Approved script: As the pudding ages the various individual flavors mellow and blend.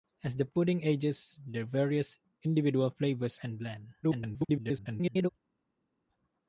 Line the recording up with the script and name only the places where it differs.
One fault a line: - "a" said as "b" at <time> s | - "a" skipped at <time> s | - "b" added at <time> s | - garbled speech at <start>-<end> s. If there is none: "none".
- "mellow" skipped at 3.4 s
- garbled speech at 4.0-5.3 s